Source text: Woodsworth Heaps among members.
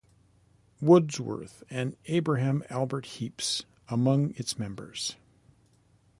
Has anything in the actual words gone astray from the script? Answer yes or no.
yes